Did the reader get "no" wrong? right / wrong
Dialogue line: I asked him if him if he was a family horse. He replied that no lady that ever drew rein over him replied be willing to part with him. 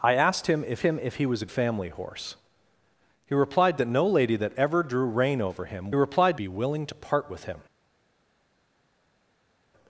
right